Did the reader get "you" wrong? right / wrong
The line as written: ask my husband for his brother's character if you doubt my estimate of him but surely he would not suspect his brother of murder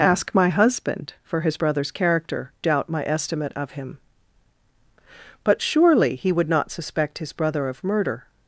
wrong